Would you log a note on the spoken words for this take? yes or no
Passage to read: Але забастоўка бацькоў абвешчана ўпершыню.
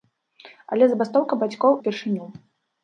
yes